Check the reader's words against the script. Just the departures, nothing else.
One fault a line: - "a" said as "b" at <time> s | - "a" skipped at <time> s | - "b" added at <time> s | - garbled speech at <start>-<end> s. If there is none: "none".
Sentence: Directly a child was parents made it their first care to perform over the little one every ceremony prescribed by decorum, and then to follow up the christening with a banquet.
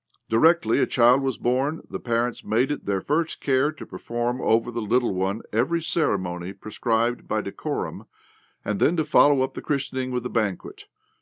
- "born the" added at 1.4 s